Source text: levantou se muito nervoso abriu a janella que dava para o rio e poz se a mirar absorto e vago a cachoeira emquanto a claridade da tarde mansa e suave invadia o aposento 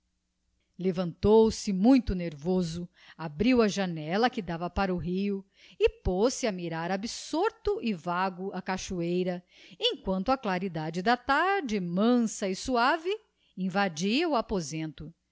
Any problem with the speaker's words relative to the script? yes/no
no